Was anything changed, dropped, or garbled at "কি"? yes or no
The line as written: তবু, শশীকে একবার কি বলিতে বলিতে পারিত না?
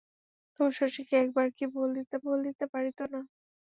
no